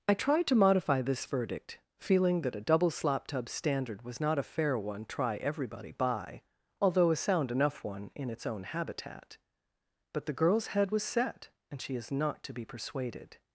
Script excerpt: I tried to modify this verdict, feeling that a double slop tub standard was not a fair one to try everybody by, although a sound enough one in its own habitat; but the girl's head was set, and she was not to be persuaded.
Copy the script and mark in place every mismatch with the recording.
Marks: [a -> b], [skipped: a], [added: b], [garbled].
I tried to modify this verdict, feeling that a double slop tub standard was not a fair one [skipped: to] try everybody by, although a sound enough one in its own habitat; but the girl's head was set, and she [was -> is] not to be persuaded.